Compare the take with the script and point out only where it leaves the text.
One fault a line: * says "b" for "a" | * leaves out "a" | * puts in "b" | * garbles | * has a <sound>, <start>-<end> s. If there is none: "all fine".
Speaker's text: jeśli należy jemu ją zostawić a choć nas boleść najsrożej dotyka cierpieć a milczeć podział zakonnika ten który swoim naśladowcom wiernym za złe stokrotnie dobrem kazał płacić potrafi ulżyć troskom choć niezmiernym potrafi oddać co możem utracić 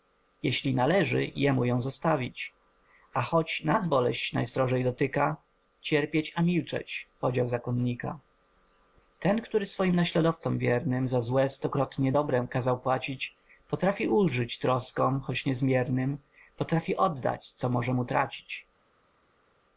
all fine